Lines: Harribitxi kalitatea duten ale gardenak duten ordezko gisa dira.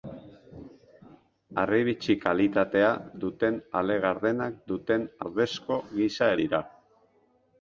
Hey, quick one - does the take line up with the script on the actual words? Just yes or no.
yes